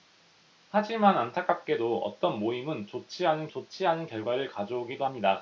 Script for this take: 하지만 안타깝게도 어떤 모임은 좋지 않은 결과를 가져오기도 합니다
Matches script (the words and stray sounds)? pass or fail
fail